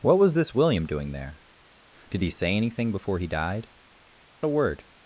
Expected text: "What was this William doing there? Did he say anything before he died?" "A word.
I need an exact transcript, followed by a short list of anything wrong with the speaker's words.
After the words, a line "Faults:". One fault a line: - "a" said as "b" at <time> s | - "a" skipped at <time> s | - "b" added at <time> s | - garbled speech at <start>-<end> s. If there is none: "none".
"What was this William doing there? Did he say anything before he died?" "A word.
Faults:
none